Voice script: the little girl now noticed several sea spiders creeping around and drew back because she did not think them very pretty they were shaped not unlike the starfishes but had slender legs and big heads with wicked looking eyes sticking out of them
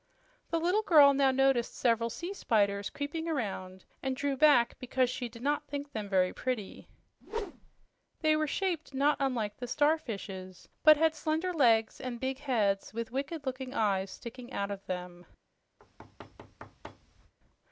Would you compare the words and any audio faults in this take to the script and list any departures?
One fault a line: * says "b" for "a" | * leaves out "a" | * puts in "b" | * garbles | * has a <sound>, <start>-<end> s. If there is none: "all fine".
* has a whoosh, 7.2-7.9 s
* has a thud, 15.8-17.3 s